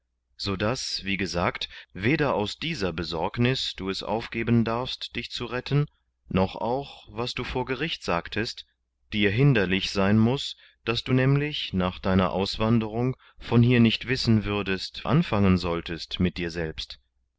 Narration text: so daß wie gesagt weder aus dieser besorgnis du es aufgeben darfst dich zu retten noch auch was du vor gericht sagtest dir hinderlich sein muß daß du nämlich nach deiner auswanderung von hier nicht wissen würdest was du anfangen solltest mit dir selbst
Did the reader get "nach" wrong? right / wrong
right